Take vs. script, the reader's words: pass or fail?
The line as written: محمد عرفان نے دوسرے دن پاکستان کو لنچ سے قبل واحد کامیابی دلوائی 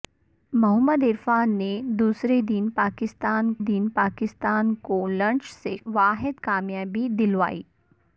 fail